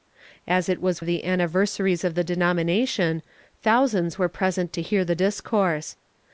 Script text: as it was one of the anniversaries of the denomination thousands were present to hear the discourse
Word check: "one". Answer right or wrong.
wrong